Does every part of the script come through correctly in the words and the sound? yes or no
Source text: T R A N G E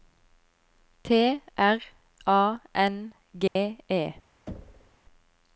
no